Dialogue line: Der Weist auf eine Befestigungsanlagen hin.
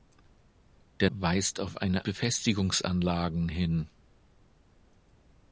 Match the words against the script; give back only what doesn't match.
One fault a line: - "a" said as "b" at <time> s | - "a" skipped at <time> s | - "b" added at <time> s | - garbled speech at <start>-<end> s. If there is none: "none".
none